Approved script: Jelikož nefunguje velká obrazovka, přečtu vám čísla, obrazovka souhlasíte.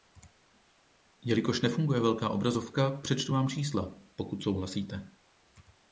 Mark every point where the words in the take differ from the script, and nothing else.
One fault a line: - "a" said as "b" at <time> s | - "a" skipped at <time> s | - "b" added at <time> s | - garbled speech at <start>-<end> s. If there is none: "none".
- "obrazovka" said as "pokud" at 4.2 s